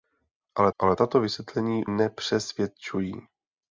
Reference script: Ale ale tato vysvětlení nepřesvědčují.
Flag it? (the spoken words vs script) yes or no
no